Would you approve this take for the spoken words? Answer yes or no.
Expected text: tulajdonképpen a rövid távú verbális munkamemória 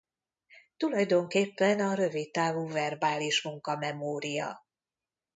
yes